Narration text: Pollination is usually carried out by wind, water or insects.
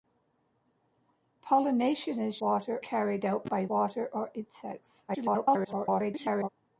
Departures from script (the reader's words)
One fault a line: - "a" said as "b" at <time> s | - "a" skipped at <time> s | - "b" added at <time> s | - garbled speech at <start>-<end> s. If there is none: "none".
- "usually" said as "water" at 2.4 s
- "wind" skipped at 3.7 s
- garbled speech at 5.1-6.5 s